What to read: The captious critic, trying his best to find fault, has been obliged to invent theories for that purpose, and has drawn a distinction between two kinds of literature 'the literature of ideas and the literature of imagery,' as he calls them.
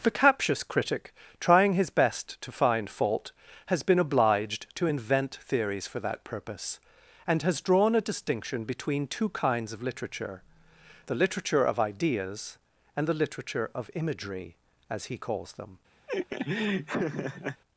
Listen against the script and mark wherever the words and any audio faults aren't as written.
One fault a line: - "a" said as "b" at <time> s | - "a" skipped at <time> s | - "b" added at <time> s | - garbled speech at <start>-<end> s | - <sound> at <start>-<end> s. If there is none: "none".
- laugh at 16.1-17.6 s